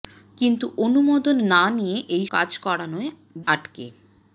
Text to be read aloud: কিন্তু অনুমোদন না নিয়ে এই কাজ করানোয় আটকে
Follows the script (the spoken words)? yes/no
yes